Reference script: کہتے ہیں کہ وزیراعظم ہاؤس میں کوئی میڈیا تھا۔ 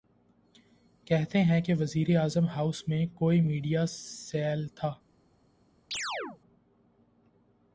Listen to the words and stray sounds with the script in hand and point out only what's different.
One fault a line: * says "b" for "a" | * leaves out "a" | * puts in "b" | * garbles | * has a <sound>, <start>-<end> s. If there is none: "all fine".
* puts in "سیل"
* has a chirp, 5.9-6.4 s